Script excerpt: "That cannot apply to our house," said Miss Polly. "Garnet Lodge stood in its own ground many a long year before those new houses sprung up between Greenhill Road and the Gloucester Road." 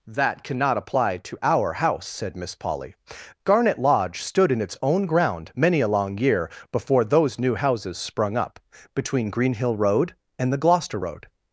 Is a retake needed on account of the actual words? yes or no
no